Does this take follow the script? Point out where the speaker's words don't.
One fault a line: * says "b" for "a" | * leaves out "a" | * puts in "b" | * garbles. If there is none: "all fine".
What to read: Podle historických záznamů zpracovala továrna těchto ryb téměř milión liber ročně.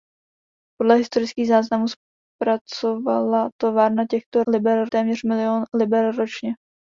* says "liber" for "ryb"